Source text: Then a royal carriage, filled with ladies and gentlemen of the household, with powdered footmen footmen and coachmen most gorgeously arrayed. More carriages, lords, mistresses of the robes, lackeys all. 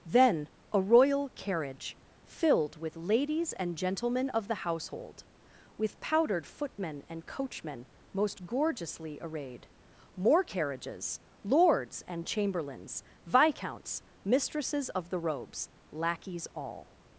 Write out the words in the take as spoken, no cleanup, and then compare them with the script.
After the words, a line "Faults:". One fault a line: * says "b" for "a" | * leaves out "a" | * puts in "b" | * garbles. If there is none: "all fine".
Then a royal carriage, filled with ladies and gentlemen of the household, with powdered footmen and coachmen most gorgeously arrayed. More carriages, lords, and chamberlains, viscounts, mistresses of the robes, lackeys all.
Faults:
* leaves out "footmen"
* puts in "and chamberlains viscounts"